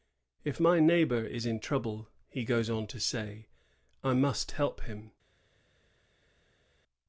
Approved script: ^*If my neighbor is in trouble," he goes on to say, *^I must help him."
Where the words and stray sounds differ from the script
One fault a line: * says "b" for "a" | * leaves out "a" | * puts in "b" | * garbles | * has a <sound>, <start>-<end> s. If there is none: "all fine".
all fine